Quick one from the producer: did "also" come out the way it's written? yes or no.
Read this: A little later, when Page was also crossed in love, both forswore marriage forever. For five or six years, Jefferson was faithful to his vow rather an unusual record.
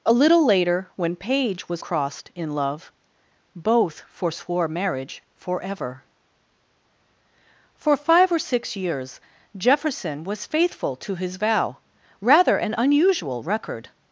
no